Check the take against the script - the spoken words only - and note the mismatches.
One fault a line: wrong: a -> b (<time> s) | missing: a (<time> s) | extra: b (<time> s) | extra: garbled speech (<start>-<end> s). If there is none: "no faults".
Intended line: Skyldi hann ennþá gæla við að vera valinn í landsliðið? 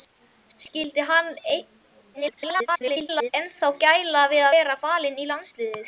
extra: garbled speech (2.1-3.3 s)
missing: að (4.5 s)